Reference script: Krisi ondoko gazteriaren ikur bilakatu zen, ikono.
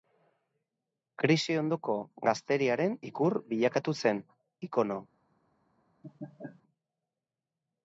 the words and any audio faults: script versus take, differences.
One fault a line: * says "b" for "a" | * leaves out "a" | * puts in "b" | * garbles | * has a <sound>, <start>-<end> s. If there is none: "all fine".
* has a laugh, 6.0-6.6 s